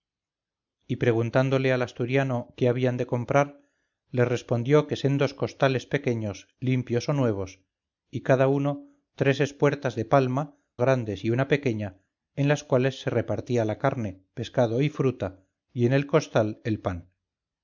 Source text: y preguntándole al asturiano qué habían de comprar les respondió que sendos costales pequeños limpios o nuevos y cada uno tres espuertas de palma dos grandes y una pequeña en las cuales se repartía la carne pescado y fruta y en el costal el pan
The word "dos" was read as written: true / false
false